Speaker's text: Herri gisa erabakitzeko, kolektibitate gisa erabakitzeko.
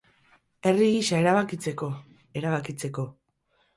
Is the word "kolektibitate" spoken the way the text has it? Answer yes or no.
no